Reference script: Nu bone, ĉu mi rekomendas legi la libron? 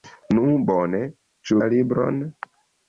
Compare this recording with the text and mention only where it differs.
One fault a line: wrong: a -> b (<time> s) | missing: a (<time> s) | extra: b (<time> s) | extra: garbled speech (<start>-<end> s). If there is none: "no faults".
missing: mi rekomendas legi (1.6 s)